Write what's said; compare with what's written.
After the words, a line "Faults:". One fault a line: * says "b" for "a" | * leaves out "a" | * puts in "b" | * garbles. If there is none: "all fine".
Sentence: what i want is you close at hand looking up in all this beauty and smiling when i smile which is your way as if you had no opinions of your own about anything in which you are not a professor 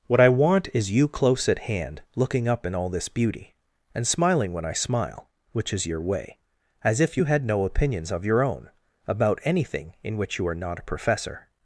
what i want is you close at hand looking up in all this beauty and smiling when i smile which is your way as if you had no opinions of your own about anything in which you are not a professor
Faults:
all fine